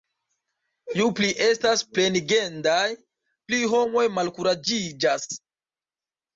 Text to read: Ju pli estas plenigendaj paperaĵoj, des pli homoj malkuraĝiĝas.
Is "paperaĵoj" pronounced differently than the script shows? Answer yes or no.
yes